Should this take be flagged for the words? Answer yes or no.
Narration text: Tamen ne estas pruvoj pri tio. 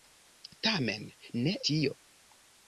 yes